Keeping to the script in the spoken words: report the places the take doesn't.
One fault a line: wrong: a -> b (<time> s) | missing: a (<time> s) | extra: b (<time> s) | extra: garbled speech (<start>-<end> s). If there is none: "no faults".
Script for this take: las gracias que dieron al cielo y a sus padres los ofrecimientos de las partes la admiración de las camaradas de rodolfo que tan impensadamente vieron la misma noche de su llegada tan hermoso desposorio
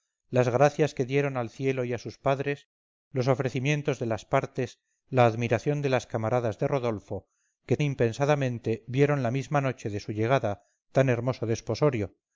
missing: tan (7.8 s)